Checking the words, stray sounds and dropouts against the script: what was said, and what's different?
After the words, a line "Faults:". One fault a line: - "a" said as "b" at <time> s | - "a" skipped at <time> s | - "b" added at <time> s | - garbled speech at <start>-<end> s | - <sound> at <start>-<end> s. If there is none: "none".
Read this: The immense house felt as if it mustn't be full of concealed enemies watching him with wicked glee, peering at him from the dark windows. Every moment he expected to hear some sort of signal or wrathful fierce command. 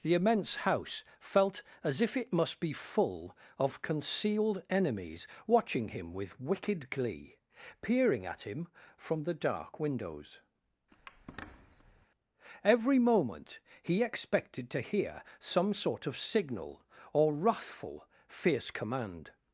The immense house felt as if it must be full of concealed enemies watching him with wicked glee, peering at him from the dark windows. Every moment he expected to hear some sort of signal or wrathful fierce command.
Faults:
- "mustn't" said as "must" at 2.3 s
- squeak at 10.9-12.1 s